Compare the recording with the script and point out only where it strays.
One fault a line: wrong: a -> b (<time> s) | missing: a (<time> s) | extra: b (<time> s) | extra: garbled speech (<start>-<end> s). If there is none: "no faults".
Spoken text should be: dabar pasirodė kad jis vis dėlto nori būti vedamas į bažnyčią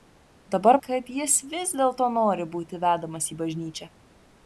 missing: pasirodė (0.8 s)